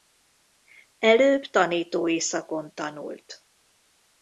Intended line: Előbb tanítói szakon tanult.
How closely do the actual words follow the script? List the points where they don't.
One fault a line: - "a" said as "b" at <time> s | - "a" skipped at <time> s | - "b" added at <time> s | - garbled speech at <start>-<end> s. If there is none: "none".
none